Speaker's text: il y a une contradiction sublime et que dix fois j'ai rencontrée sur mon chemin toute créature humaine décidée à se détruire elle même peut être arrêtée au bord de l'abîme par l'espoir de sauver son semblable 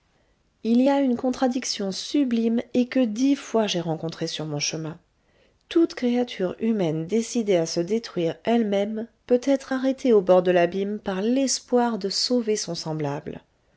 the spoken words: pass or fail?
pass